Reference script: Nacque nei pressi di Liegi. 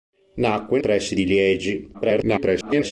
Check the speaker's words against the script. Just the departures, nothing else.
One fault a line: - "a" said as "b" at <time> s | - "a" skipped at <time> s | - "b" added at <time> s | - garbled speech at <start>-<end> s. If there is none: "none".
- "nei" skipped at 0.8 s
- garbled speech at 1.9-2.9 s